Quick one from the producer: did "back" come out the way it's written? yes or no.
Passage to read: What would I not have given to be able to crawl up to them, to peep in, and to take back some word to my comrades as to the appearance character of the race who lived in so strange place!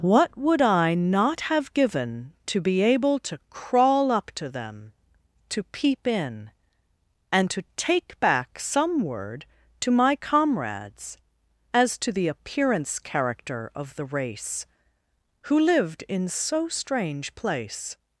yes